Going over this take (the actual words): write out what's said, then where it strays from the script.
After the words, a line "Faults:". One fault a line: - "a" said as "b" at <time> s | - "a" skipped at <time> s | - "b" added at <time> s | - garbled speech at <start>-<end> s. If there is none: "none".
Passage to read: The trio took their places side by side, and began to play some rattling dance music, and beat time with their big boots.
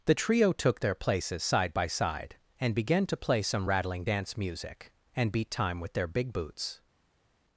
The trio took their places side by side, and began to play some rattling dance music, and beat time with their big boots.
Faults:
none